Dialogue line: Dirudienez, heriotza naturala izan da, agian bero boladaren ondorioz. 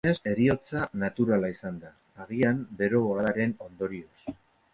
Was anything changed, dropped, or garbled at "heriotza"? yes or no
no